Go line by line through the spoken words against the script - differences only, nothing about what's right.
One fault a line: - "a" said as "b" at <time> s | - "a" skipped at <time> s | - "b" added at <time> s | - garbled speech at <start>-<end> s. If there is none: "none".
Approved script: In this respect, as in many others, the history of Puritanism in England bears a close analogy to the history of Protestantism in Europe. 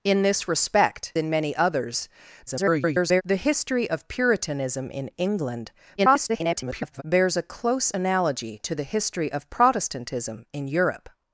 - "as" skipped at 1.1 s
- garbled speech at 2.5-3.2 s
- garbled speech at 6.0-7.0 s